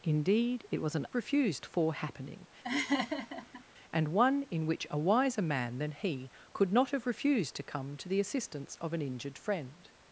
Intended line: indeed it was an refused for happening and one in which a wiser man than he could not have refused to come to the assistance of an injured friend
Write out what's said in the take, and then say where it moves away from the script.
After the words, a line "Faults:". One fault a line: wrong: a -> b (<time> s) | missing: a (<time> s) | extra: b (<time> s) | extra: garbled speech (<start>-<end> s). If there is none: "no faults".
indeed it was an refused for happening and one in which a wiser man than he could not have refused to come to the assistance of an injured friend
Faults:
no faults